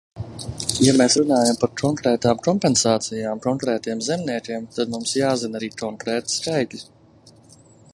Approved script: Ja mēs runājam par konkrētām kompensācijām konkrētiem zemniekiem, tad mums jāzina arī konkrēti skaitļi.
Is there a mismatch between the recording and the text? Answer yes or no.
no